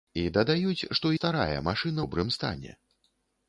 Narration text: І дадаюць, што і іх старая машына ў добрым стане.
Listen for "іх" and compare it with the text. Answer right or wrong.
wrong